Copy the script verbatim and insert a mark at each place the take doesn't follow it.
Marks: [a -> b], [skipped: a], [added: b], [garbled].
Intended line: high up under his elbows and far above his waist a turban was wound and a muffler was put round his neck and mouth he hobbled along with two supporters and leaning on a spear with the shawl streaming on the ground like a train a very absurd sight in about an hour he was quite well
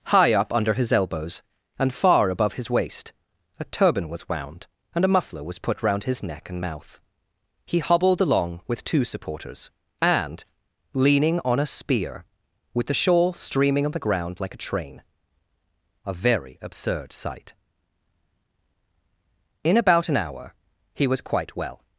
high up under his elbows and far above his waist a turban was wound and a muffler was put round his neck and mouth he hobbled along with two supporters and leaning on a spear with the shawl streaming on the ground like a train a very absurd sight in about an hour he was quite well